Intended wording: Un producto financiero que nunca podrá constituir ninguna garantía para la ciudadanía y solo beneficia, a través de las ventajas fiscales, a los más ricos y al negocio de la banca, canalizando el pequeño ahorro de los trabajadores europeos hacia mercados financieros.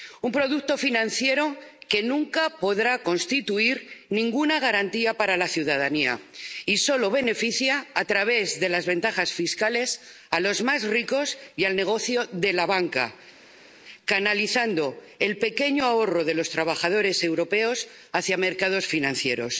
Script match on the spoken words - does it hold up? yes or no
yes